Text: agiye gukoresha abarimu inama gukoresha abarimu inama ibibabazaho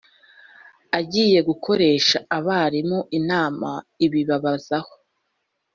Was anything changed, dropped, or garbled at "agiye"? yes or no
no